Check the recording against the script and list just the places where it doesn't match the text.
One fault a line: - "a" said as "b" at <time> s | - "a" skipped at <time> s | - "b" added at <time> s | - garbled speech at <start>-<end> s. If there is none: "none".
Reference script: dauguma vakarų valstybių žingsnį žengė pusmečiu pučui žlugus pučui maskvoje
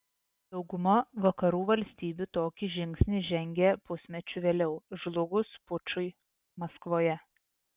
- "tokį" added at 2.4 s
- "pučui" said as "vėliau" at 4.5 s